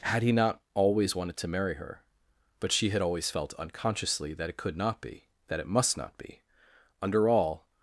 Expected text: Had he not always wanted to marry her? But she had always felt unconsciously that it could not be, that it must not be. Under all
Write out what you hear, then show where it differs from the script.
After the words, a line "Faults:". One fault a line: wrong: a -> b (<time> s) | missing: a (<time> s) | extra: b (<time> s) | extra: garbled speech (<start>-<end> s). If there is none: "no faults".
Had he not always wanted to marry her? But she had always felt unconsciously that it could not be, that it must not be. Under all
Faults:
no faults